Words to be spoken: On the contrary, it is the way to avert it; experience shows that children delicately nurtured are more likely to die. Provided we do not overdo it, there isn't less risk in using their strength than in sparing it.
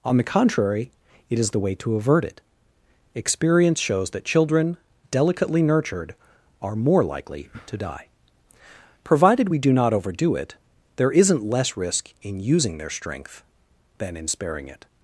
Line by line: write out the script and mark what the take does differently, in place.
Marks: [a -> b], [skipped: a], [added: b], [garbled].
On the contrary, it is the way to avert it; experience shows that children delicately nurtured are more likely to die. Provided we do not overdo it, there isn't less risk in using their strength than in sparing it.